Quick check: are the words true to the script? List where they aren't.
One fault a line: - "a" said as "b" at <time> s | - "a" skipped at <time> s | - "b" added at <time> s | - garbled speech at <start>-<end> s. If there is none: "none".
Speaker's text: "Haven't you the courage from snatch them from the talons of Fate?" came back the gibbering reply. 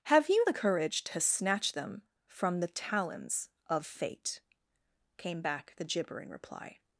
- "Haven't" said as "Have" at 0.0 s
- "from" said as "to" at 1.1 s